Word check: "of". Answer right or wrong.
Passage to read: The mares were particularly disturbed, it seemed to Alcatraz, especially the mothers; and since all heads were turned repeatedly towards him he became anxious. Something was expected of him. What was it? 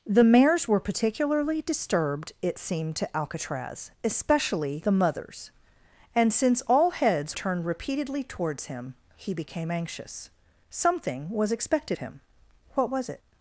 wrong